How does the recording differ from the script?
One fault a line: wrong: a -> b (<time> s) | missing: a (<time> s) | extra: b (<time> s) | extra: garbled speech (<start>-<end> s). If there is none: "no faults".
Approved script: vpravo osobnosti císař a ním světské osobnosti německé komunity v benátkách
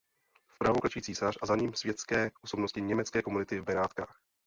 wrong: osobnosti -> klečí (0.8 s)
extra: za (1.5 s)